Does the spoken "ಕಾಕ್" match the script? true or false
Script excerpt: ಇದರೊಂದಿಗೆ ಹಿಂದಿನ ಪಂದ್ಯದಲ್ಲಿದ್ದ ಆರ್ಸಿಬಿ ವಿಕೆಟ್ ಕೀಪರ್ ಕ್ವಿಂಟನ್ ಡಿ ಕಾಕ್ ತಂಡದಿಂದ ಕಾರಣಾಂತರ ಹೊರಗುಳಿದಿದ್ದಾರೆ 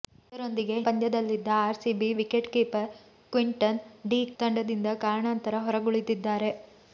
false